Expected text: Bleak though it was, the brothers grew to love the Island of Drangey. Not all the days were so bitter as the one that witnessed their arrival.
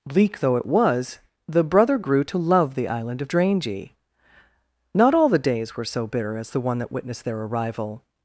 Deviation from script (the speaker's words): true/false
true